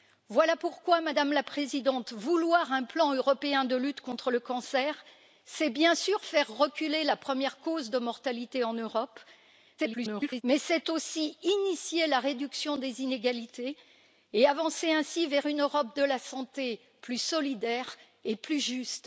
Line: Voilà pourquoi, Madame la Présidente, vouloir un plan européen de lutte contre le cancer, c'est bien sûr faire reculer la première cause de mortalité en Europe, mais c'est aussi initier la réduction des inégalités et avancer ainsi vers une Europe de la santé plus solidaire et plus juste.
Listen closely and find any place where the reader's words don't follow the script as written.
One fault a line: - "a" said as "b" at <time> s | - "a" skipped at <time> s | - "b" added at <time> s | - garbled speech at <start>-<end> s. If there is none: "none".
- garbled speech at 9.8-10.4 s